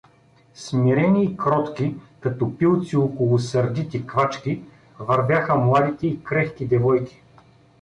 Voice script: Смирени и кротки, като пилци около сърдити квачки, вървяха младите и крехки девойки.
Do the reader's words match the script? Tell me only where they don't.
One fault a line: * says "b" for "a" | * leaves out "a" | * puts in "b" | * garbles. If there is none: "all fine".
all fine